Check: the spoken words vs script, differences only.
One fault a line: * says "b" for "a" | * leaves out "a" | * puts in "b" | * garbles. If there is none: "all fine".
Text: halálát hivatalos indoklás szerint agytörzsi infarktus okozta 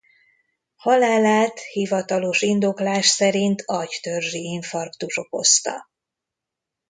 all fine